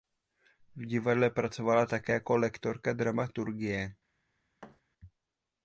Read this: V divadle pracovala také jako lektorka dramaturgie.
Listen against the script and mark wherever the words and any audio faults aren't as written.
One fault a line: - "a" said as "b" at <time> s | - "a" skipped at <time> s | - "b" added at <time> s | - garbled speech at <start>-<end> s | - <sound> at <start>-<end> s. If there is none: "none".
- thud at 4.6-4.8 s